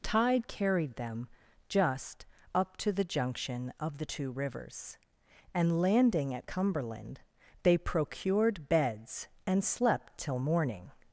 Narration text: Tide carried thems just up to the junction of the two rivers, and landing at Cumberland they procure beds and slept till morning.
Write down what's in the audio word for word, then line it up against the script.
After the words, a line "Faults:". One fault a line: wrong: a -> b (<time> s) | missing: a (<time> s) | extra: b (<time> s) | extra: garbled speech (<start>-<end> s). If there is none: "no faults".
Tide carried them just up to the junction of the two rivers, and landing at Cumberland they procured beds and slept till morning.
Faults:
wrong: thems -> them (0.9 s)
wrong: procure -> procured (7.8 s)